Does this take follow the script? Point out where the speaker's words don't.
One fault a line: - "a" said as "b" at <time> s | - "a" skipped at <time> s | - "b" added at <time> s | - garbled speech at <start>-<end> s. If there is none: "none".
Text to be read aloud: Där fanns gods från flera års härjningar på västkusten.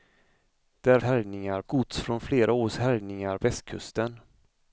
- "fanns" said as "härjningar" at 1.0 s
- "på" skipped at 3.4 s